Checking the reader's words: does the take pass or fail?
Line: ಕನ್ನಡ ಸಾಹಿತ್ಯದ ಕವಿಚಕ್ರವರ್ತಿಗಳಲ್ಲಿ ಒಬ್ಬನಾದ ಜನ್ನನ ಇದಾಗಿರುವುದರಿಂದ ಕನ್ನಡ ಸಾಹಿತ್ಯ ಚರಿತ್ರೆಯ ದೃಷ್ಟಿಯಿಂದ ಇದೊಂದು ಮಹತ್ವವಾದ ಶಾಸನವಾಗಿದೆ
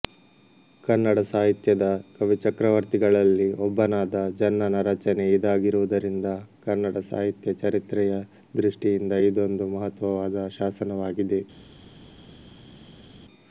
fail